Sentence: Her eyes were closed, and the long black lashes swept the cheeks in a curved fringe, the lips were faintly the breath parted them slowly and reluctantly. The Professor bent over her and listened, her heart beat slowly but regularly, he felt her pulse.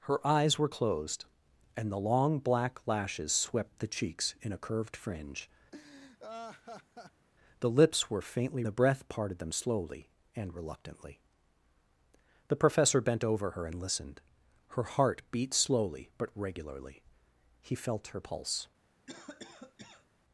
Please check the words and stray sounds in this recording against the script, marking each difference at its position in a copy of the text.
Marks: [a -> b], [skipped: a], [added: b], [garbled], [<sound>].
Her eyes were closed, and the long black lashes swept the cheeks in a curved fringe, [laugh] the lips were faintly the breath parted them slowly and reluctantly. The Professor bent over her and listened, her heart beat slowly but regularly, he felt her pulse. [cough]